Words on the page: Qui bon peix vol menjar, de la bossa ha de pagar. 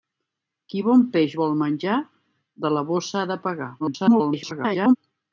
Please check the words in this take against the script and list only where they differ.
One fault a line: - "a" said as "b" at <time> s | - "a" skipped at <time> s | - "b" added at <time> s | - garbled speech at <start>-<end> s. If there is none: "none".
- garbled speech at 3.8-5.0 s